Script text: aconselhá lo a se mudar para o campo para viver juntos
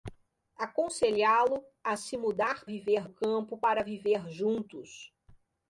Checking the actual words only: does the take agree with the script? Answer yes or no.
no